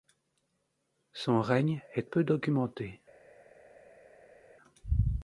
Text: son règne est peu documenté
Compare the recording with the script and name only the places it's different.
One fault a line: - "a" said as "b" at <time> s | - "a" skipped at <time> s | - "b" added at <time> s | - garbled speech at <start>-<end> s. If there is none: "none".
none